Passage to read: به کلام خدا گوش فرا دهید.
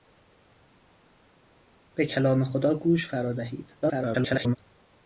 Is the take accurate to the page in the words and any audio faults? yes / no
no